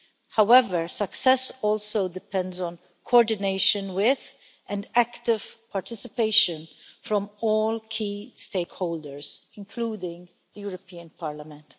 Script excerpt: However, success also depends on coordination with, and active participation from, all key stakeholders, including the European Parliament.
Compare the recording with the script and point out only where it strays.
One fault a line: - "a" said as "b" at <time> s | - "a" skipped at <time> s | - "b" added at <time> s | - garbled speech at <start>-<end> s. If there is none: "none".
none